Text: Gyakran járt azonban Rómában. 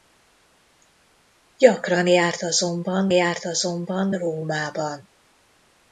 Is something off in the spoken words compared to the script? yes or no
yes